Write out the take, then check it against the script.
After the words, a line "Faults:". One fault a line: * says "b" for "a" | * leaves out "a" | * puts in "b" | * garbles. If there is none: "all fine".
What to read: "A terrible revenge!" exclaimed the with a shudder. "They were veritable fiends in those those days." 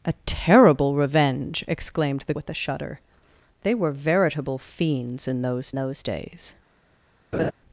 "A terrible revenge!" exclaimed the with a shudder. "They were veritable fiends in those those days."
Faults:
all fine